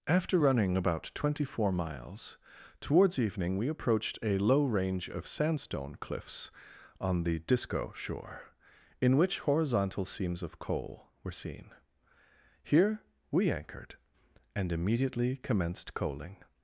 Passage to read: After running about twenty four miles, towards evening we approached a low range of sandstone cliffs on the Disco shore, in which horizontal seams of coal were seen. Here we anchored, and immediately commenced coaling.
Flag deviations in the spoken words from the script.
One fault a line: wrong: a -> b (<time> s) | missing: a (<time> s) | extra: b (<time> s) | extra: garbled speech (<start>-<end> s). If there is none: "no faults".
no faults